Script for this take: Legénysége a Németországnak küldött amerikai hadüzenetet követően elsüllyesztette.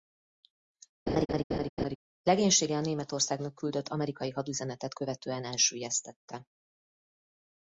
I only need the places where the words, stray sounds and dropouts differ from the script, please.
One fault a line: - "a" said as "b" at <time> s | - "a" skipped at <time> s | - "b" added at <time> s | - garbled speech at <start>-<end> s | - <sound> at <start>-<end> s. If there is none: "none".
- laugh at 1.1-2.0 s